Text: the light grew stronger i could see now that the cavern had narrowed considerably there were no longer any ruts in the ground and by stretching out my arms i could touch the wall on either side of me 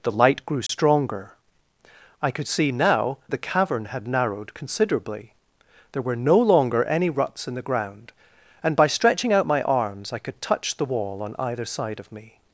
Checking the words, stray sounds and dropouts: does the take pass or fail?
fail